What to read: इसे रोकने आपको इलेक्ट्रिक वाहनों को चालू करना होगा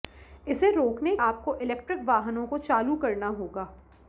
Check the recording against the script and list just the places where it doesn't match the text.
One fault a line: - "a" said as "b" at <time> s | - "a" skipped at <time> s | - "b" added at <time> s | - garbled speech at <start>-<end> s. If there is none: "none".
none